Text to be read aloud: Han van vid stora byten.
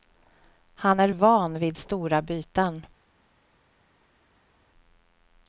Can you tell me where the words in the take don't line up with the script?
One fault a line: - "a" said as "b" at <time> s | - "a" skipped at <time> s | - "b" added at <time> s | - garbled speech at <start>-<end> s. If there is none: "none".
- "är" added at 1.0 s